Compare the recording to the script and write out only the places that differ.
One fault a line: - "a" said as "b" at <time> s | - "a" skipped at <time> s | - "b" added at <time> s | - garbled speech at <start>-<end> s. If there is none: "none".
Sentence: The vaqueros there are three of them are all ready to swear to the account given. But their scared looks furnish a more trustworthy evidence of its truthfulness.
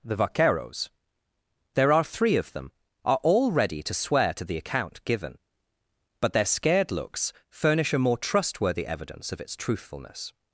none